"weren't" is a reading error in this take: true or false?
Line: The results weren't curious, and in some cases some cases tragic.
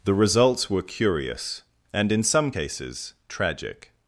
true